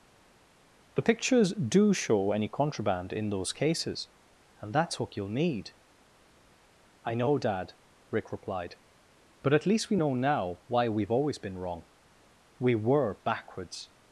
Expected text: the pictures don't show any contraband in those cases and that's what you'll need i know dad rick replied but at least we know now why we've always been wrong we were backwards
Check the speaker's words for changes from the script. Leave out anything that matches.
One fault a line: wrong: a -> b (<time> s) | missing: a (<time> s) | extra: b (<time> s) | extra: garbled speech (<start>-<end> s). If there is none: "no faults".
wrong: don't -> do (1.5 s)